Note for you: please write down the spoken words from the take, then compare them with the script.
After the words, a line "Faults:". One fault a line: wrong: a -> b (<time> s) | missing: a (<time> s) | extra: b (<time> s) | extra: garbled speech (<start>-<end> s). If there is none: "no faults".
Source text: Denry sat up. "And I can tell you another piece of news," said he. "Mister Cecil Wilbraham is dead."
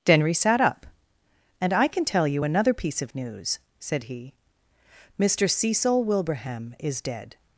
Denry sat up. "And I can tell you another piece of news," said he. "Mister Cecil Wilbraham is dead."
Faults:
no faults